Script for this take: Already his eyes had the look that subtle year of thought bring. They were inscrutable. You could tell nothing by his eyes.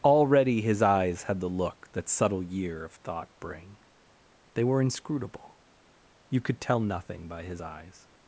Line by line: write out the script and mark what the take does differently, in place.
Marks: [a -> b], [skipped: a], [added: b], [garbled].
Already his eyes had the look that subtle year of thought bring. They were inscrutable. You could tell nothing by his eyes.